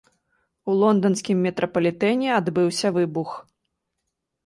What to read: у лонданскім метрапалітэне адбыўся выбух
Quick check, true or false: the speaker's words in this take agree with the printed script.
true